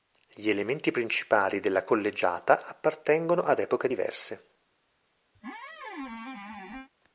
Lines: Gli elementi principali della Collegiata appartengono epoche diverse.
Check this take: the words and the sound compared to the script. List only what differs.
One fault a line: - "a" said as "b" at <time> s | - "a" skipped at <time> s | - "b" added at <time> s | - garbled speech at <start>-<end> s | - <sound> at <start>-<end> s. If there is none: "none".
- "ad" added at 3.4 s
- squeak at 5.3-6.9 s